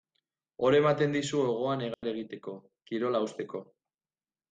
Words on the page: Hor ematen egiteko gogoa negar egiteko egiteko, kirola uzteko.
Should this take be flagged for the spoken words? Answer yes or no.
yes